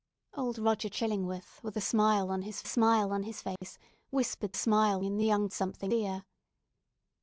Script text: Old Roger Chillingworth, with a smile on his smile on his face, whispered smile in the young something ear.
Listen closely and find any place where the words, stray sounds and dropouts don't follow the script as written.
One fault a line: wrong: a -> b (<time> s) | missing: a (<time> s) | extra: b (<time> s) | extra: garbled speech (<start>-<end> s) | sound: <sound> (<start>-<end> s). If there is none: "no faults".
sound: dropout (3.6-3.6 s)